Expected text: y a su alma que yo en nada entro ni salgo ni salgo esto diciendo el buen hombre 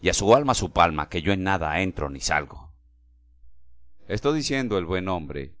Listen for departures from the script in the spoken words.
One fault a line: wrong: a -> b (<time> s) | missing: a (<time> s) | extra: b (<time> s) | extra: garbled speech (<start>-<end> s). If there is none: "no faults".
extra: su palma (0.5 s)
missing: ni salgo (2.7 s)